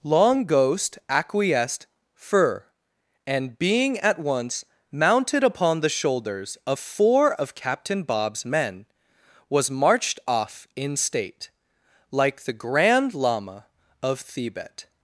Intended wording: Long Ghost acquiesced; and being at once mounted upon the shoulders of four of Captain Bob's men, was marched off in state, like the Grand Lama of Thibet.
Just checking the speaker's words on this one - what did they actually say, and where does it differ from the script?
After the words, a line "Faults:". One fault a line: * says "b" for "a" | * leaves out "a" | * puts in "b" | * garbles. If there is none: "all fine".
Long Ghost acquiesced; fur and being at once mounted upon the shoulders of four of Captain Bob's men, was marched off in state, like the Grand Lama of Thibet.
Faults:
* puts in "fur"